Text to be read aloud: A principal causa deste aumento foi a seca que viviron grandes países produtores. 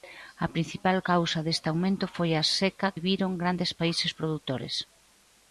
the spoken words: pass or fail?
fail